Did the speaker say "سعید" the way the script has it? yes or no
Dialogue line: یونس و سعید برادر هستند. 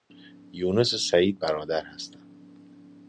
yes